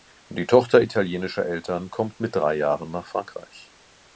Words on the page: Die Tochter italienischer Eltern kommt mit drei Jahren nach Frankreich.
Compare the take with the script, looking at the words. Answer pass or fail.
pass